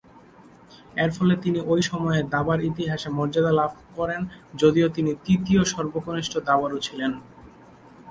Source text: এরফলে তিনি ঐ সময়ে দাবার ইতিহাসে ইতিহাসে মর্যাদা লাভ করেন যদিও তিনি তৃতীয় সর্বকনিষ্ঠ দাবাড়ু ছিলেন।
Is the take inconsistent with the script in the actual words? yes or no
yes